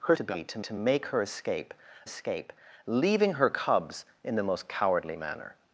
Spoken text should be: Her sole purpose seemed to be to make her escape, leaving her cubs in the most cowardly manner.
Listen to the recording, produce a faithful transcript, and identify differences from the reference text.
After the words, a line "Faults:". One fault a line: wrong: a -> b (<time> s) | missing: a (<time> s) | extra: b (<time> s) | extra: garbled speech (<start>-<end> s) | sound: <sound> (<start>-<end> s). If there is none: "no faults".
Her to be to to make her escape escape, leaving her cubs in the most cowardly manner.
Faults:
missing: sole purpose seemed (0.1 s)
extra: to (0.6 s)
extra: escape (2.0 s)